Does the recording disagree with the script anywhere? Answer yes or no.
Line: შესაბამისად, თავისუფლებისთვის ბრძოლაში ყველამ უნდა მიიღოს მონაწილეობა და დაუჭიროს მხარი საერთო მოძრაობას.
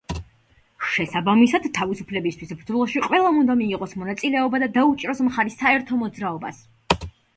no